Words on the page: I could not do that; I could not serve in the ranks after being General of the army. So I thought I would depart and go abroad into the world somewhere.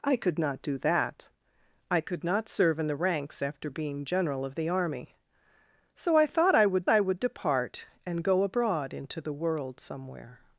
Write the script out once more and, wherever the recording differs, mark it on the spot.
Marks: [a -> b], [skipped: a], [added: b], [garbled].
I could not do that; I could not serve in the ranks after being General of the army. So I thought I would [added: I would] depart and go abroad into the world somewhere.